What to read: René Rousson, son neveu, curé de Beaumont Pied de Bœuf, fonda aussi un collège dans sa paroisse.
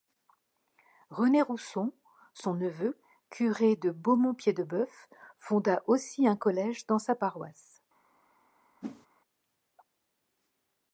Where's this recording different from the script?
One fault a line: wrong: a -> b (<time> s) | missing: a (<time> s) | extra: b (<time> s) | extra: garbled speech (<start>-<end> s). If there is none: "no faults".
no faults